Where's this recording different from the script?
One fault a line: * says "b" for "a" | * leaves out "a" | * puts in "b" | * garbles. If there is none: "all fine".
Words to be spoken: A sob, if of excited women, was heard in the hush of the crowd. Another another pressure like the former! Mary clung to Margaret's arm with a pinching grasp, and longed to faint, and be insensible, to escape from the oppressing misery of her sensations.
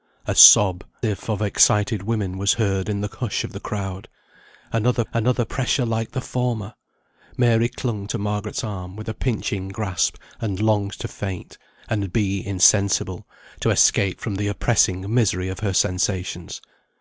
all fine